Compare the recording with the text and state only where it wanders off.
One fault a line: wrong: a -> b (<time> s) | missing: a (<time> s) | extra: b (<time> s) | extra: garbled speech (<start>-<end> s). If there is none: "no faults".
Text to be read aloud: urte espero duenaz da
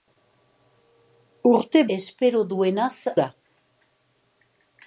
no faults